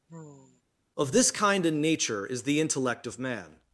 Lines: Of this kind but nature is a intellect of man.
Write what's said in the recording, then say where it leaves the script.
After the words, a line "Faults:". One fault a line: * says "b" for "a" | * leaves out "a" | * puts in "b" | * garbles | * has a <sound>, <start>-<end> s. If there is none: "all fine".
Of this kind and nature is the intellect of man.
Faults:
* has a sigh, 0.1-0.6 s
* says "and" for "but"
* says "the" for "a"